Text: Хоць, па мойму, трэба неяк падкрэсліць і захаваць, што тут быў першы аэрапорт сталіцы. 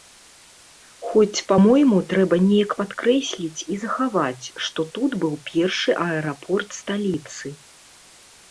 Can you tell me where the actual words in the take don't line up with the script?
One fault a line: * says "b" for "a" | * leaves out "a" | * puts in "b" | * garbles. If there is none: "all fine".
all fine